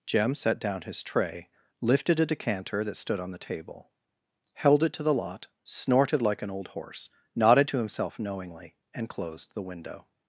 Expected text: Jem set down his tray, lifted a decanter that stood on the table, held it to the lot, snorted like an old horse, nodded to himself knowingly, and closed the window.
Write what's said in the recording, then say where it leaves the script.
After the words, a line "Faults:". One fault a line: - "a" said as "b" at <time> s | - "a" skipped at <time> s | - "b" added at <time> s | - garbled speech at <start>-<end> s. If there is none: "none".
Jem set down his tray, lifted a decanter that stood on the table, held it to the lot, snorted like an old horse, nodded to himself knowingly, and closed the window.
Faults:
none